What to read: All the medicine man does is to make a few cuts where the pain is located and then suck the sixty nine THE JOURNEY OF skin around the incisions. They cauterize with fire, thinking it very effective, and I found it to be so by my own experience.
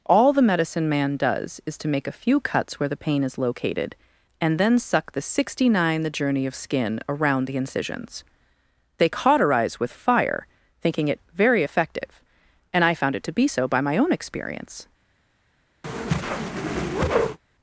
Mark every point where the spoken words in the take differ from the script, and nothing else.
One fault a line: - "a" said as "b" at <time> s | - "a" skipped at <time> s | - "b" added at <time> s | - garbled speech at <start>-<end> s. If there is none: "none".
none